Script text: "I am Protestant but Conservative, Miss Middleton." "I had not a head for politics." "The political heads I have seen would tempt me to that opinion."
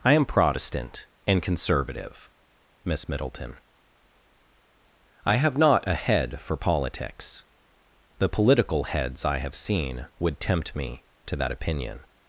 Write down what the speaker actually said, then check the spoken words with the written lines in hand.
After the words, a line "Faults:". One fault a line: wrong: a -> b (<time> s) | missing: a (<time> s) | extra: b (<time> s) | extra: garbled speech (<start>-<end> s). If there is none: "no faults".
"I am Protestant and Conservative, Miss Middleton." "I have not a head for politics." "The political heads I have seen would tempt me to that opinion."
Faults:
wrong: but -> and (1.3 s)
wrong: had -> have (5.3 s)